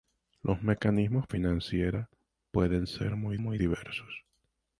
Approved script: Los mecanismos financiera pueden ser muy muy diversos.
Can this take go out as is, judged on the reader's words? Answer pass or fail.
pass